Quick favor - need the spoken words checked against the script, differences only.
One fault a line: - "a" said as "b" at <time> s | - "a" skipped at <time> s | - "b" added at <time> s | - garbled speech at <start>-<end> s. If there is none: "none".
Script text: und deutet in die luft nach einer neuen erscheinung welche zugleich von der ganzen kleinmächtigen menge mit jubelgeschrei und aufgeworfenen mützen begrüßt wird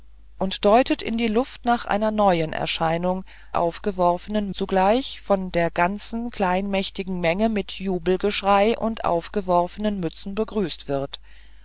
- "welche" said as "aufgeworfenen" at 3.5 s